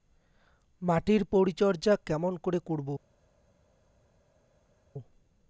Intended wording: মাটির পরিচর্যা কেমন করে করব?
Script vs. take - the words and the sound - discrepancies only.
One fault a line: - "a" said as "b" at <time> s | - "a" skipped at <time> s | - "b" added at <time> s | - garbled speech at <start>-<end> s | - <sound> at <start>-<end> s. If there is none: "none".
none